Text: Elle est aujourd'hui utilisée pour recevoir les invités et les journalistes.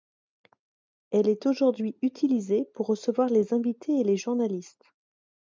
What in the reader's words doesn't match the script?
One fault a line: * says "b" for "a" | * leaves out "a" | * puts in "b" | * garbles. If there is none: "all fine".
all fine